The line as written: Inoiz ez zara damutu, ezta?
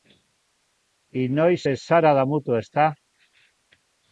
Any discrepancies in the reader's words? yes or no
no